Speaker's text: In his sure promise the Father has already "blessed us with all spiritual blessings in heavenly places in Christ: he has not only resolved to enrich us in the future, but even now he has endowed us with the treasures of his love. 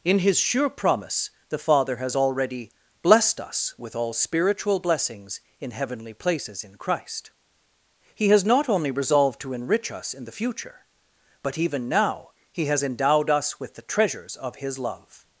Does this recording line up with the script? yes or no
yes